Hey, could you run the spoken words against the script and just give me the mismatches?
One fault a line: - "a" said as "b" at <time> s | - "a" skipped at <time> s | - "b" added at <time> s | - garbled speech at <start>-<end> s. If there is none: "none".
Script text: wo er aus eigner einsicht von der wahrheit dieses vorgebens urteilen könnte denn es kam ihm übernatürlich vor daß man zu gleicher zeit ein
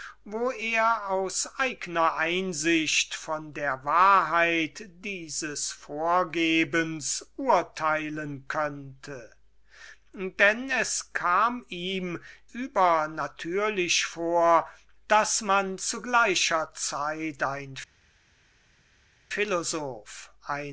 none